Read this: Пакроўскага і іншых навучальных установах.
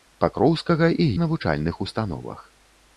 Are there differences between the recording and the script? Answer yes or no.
yes